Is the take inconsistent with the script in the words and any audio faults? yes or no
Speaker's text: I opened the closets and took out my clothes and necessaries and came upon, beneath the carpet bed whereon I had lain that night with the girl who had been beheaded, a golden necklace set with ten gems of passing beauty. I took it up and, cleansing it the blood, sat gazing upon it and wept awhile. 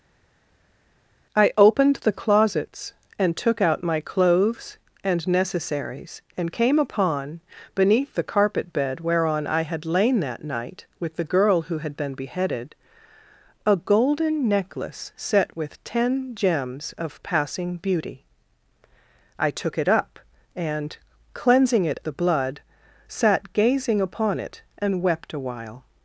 no